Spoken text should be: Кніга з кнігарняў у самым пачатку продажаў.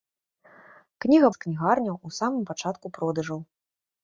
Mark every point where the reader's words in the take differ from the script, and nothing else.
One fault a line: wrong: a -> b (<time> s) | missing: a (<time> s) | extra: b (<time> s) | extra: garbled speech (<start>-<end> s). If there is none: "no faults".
no faults